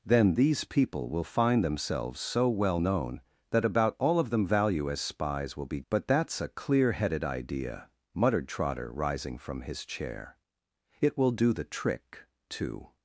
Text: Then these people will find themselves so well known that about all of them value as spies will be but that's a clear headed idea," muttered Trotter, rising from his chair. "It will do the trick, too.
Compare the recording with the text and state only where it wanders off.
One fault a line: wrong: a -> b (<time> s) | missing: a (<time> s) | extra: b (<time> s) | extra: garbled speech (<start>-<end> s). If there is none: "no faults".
no faults